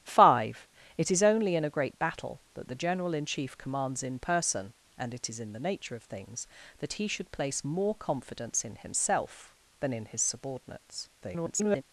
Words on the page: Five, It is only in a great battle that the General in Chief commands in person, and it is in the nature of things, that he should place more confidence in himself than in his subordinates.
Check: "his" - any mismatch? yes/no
no